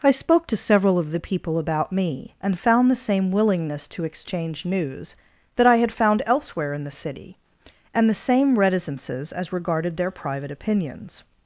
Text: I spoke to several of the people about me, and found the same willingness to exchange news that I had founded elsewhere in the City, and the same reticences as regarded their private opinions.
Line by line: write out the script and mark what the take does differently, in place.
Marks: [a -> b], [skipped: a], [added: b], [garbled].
I spoke to several of the people about me, and found the same willingness to exchange news that I had [founded -> found] elsewhere in the City, and the same reticences as regarded their private opinions.